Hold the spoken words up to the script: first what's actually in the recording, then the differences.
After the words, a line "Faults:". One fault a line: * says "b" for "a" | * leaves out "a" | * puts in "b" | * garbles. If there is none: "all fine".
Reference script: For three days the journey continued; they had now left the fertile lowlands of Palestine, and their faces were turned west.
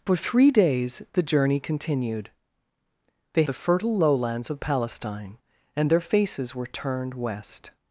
For three days the journey continued; they the fertile lowlands of Palestine, and their faces were turned west.
Faults:
* leaves out "had now left"